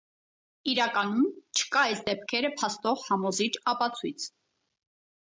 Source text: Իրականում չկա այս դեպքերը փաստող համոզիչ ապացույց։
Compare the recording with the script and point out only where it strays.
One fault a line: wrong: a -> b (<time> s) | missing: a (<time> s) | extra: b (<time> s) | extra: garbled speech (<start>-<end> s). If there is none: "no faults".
no faults